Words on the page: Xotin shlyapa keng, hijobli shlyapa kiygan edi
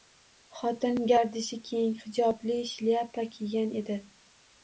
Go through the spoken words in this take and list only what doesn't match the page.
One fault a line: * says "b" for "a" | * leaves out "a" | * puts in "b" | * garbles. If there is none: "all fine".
* says "gardishi" for "shlyapa"